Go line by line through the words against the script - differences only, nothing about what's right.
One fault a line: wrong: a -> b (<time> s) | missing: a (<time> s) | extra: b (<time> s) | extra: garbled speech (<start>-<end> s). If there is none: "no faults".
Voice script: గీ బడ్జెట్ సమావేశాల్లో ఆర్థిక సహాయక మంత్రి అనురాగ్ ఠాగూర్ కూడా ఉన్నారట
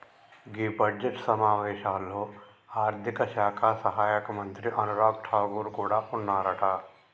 extra: శాఖ (3.3 s)